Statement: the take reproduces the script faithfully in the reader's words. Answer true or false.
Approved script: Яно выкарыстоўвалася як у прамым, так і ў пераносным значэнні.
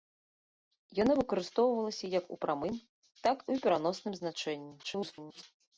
false